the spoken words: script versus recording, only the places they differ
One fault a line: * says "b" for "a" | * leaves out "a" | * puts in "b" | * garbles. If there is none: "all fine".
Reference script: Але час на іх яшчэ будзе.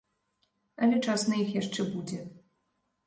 all fine